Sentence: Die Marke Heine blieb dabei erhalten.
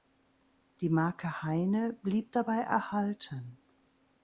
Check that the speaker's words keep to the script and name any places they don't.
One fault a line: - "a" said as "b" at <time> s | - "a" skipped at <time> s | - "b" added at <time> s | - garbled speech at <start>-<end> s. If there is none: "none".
none